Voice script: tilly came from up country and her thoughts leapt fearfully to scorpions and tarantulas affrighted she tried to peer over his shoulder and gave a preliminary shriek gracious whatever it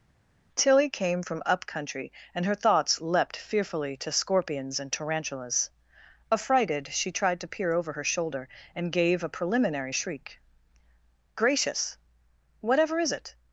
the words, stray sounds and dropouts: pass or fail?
fail